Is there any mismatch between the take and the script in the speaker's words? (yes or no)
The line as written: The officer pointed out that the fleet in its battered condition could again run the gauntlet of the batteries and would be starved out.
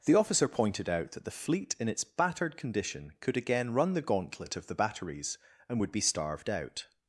no